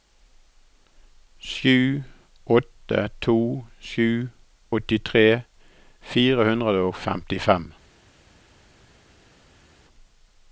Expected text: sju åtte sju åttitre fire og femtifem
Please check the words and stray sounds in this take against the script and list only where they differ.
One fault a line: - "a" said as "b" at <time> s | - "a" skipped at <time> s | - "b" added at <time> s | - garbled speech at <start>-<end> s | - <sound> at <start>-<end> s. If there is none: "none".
- "to" added at 3.2 s
- "hundre" added at 6.5 s